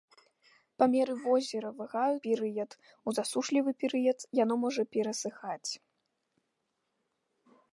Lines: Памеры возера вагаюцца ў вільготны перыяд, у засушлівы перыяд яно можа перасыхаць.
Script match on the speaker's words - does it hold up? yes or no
no